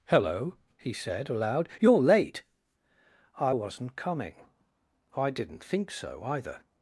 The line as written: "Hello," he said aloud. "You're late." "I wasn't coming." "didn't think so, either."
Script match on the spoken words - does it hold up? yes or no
no